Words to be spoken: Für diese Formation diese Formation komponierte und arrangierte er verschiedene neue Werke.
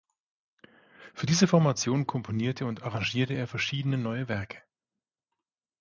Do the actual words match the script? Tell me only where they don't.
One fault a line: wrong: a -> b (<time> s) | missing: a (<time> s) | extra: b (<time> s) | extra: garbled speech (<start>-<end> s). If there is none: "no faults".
missing: diese Formation (2.1 s)